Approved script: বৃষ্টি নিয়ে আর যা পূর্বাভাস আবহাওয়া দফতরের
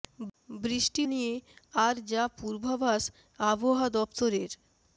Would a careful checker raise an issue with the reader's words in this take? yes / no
no